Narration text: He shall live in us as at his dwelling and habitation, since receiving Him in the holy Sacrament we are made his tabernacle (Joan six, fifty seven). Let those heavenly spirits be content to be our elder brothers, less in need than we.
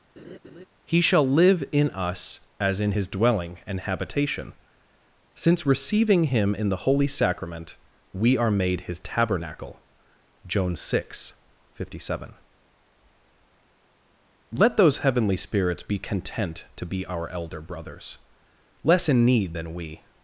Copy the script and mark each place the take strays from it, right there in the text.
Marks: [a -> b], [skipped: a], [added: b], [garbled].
He shall live in us as [at -> in] his dwelling and habitation, since receiving Him in the holy Sacrament we are made his tabernacle (Joan six, fifty seven). Let those heavenly spirits be content to be our elder brothers, less in need than we.